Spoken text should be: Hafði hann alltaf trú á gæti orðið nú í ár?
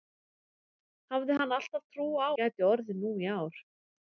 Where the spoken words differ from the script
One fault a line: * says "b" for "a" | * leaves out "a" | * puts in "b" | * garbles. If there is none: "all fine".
all fine